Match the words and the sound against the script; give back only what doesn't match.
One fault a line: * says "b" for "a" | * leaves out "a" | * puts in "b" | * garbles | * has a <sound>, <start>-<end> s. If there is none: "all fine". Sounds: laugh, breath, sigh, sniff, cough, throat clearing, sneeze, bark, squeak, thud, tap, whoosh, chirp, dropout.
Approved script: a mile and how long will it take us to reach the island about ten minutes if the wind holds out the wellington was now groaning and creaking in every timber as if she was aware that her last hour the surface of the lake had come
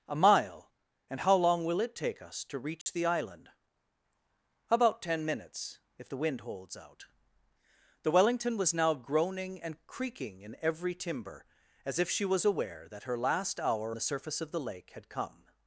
* has a dropout, 2.8-2.9 s